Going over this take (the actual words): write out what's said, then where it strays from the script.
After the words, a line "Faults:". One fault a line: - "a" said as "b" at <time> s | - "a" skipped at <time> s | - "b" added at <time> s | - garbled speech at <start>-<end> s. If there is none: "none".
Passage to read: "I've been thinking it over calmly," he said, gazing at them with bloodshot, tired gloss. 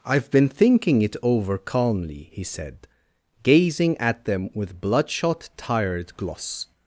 "I've been thinking it over calmly," he said, gazing at them with bloodshot, tired gloss.
Faults:
none